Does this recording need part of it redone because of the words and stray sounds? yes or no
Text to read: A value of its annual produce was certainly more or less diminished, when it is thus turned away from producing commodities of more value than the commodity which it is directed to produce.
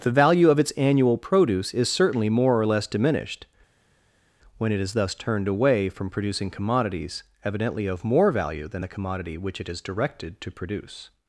yes